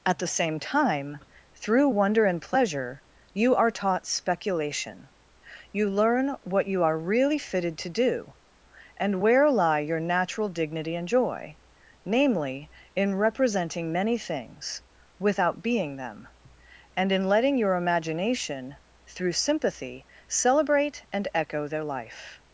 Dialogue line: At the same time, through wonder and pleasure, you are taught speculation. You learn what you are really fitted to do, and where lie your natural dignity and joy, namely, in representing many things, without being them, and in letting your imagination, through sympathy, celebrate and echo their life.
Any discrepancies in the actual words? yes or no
no